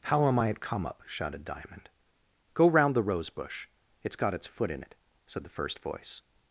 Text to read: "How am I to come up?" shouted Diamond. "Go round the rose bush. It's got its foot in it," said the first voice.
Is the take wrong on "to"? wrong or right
wrong